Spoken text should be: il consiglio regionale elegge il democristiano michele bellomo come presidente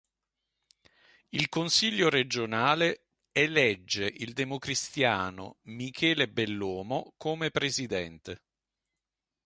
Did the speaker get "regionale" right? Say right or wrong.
right